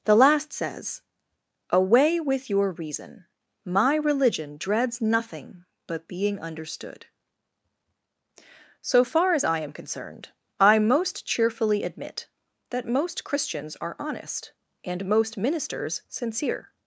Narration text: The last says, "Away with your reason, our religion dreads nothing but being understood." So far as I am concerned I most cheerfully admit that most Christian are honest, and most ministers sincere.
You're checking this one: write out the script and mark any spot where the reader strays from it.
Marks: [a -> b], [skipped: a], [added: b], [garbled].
The last says, "Away with your reason, [our -> my] religion dreads nothing but being understood." So far as I am concerned I most cheerfully admit that most [Christian -> Christians] are honest, and most ministers sincere.